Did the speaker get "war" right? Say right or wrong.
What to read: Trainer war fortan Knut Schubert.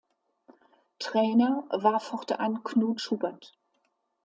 right